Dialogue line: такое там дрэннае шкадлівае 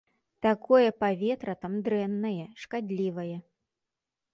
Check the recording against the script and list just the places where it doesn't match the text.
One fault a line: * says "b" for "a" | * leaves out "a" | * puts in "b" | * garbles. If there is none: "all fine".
* puts in "паветра"